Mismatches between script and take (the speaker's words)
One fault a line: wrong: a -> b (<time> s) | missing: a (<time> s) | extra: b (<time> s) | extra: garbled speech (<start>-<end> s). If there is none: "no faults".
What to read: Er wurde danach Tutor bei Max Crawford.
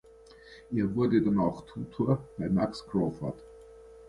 no faults